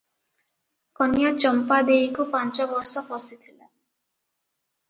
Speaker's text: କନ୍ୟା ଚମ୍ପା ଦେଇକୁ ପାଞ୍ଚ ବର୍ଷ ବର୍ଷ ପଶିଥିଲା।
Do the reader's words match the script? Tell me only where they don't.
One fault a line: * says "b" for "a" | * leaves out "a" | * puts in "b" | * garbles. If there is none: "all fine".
* leaves out "ବର୍ଷ"